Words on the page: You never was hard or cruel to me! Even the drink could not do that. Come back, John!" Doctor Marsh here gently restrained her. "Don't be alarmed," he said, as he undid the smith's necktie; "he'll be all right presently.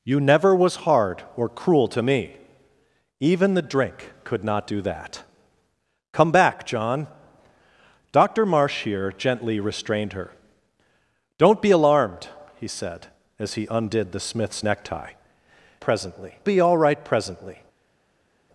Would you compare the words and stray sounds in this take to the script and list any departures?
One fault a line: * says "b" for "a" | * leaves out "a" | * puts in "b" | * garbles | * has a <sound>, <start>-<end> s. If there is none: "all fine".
* says "presently" for "he'll"